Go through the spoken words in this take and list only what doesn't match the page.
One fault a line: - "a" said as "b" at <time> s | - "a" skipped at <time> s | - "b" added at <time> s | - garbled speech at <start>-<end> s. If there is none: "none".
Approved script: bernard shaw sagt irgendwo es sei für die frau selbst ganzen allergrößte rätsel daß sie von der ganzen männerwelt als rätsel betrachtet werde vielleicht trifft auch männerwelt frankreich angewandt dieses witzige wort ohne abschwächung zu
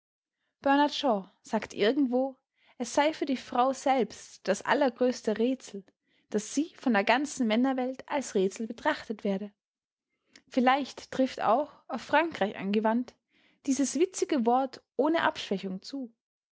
- "ganzen" said as "das" at 4.5 s
- "männerwelt" said as "auf" at 11.9 s